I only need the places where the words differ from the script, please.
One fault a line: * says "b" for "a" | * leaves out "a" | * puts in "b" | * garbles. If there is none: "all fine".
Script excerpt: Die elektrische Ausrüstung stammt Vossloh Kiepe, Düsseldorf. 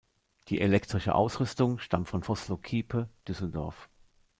* puts in "von"